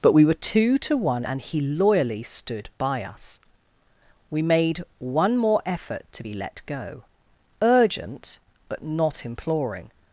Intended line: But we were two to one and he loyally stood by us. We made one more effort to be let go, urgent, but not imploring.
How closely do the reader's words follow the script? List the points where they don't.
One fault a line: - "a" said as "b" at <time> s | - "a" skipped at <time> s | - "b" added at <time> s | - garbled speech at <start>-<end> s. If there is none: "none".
none